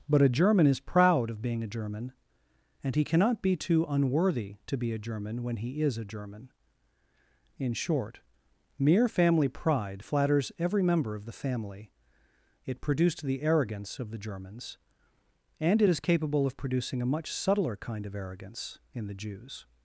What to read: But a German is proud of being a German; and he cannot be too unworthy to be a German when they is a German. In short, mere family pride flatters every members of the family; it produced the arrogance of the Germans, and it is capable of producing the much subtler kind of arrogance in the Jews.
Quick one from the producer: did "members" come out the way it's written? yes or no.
no